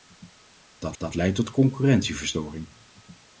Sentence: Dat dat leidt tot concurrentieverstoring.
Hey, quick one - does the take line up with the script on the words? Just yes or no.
yes